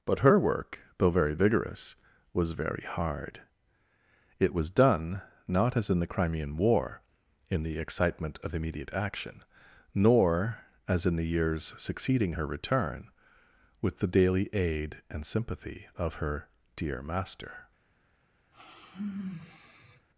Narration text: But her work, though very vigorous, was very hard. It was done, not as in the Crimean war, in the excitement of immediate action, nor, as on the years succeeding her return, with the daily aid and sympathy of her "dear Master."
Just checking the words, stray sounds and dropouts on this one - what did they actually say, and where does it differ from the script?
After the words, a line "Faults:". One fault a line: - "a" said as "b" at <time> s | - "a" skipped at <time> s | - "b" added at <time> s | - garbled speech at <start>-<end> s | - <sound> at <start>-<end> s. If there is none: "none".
But her work, though very vigorous, was very hard. It was done, not as in the Crimean war, in the excitement of immediate action, nor, as in the years succeeding her return, with the daily aid and sympathy of her "dear Master."
Faults:
- "on" said as "in" at 11.1 s
- sigh at 18.5-20.1 s